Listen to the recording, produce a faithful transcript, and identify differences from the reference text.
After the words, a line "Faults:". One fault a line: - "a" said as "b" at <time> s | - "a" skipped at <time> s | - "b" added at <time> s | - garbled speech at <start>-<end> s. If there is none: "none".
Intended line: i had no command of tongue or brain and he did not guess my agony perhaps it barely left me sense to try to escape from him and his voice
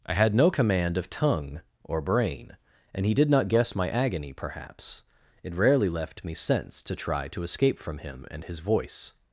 i had no command of tongue or brain and he did not guess my agony perhaps it rarely left me sense to try to escape from him and his voice
Faults:
- "barely" said as "rarely" at 5.5 s